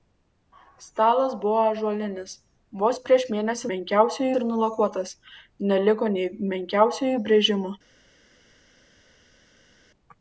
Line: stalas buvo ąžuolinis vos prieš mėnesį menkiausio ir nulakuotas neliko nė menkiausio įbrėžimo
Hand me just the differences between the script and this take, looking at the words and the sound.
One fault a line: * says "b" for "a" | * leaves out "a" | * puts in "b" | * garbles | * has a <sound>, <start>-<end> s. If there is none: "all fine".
all fine